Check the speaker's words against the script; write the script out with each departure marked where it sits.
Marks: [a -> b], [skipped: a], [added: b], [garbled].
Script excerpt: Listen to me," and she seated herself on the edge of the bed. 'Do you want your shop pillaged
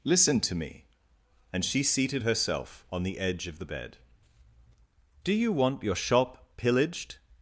Listen to me," and she seated herself on the edge of the bed. 'Do you want your shop pillaged